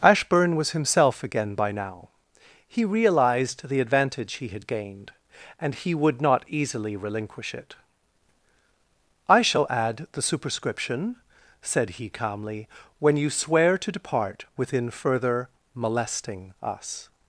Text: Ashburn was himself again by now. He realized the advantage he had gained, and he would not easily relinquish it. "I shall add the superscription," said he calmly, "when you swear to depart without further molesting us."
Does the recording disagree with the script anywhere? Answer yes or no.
yes